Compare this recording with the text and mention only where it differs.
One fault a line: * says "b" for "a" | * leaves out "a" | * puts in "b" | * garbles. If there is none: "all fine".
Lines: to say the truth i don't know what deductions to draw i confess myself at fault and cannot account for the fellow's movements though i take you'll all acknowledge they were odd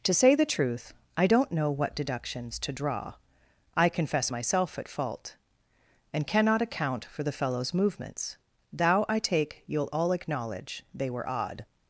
* says "thou" for "though"